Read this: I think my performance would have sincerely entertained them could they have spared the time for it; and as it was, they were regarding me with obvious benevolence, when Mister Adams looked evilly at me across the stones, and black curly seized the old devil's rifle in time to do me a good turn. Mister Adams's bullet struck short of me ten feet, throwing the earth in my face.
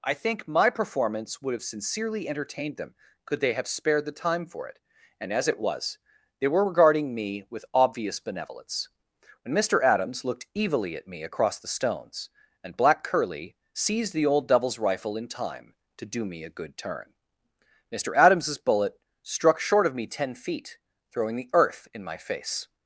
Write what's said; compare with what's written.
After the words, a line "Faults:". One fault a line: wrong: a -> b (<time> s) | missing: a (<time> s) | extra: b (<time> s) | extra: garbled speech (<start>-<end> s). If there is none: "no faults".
I think my performance would have sincerely entertained them could they have spared the time for it; and as it was, they were regarding me with obvious benevolence, when Mister Adams looked evilly at me across the stones, and black curly seized the old devil's rifle in time to do me a good turn. Mister Adams's bullet struck short of me ten feet, throwing the earth in my face.
Faults:
no faults